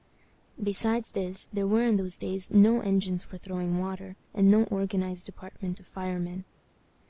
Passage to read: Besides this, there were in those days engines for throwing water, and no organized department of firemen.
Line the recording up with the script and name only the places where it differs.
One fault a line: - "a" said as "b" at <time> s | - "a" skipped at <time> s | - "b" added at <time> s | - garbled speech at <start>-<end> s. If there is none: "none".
- "no" added at 2.5 s